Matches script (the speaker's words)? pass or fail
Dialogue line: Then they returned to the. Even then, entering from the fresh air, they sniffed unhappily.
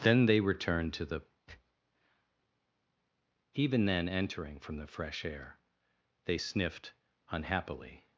pass